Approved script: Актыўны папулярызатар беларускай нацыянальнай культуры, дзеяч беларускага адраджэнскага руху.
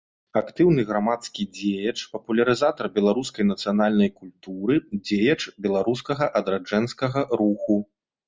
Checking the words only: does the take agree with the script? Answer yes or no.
no